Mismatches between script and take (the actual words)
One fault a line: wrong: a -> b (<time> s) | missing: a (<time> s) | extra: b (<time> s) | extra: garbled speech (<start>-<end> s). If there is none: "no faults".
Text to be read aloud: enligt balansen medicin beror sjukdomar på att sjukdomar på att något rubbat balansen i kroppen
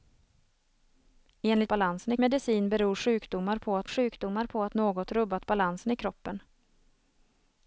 no faults